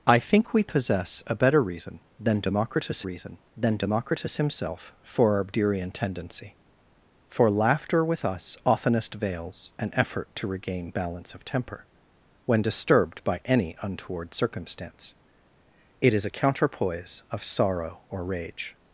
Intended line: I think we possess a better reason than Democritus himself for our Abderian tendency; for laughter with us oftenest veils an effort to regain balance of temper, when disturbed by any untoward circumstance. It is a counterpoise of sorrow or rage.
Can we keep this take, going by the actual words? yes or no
no